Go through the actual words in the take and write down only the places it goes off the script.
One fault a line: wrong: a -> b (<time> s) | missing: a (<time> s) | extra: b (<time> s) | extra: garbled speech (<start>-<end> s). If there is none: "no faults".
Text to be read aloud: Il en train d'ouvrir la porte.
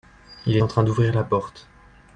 no faults